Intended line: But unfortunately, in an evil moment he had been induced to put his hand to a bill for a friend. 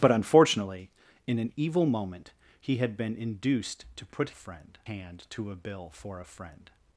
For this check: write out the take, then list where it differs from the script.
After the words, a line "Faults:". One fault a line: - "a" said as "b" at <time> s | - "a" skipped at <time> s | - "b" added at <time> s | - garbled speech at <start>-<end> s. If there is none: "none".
But unfortunately, in an evil moment he had been induced to put friend hand to a bill for a friend.
Faults:
- "his" said as "friend" at 4.3 s